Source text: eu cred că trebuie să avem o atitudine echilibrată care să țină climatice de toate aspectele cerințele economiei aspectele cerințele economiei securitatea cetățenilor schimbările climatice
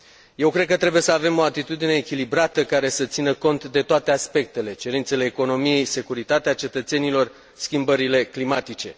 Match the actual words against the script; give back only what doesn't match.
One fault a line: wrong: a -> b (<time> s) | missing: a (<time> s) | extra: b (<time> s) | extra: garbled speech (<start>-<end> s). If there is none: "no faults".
wrong: climatice -> cont (3.3 s)
missing: aspectele cerințele economiei (5.8 s)